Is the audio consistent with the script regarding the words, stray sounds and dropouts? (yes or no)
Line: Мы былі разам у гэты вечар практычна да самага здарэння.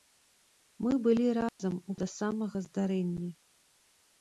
no